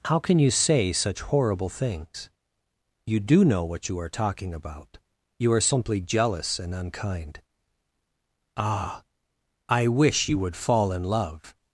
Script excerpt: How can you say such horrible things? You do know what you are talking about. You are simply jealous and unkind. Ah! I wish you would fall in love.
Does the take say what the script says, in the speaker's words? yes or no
yes